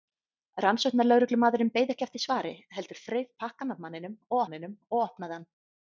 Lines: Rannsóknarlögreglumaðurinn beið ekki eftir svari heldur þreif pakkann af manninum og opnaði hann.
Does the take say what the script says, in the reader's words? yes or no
no